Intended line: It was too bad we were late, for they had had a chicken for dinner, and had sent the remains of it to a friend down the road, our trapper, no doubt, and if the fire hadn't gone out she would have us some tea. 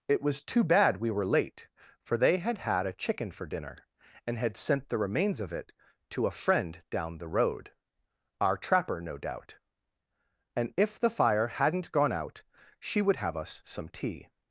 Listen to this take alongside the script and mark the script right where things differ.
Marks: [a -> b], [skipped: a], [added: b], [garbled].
It was too bad we were late, for they had had a chicken for dinner, and had sent the remains of it to a friend down the road, our trapper, no doubt, and if the fire hadn't gone out she would have us some tea.